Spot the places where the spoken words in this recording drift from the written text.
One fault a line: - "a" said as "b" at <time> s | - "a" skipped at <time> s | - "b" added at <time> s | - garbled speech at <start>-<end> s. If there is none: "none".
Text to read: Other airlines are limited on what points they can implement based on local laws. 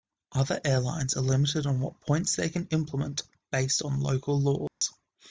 none